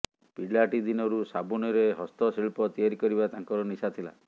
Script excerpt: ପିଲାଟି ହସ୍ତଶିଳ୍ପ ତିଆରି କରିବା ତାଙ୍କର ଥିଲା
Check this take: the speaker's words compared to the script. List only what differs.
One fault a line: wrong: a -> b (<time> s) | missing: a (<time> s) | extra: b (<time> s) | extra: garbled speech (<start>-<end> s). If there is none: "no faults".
extra: ଦିନରୁ ସାବୁନରେ (0.8 s)
extra: ନିଶା (3.7 s)